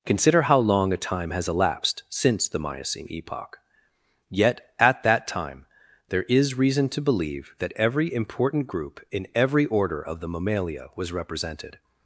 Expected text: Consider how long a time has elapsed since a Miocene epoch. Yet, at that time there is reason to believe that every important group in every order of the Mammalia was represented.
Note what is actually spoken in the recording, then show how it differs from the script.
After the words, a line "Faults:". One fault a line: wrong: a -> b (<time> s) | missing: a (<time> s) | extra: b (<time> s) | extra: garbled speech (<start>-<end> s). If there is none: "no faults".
Consider how long a time has elapsed since the Miocene epoch. Yet, at that time there is reason to believe that every important group in every order of the Mammalia was represented.
Faults:
wrong: a -> the (2.5 s)